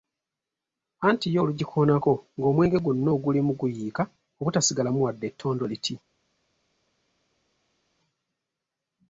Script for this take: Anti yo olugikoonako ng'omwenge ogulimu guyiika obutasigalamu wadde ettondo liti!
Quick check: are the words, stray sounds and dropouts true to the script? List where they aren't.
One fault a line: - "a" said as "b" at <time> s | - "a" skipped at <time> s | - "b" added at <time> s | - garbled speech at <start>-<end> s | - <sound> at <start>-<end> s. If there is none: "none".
- "gwonna" added at 2.8 s